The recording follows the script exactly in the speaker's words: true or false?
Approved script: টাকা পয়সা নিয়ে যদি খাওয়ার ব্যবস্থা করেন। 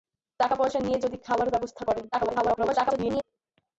false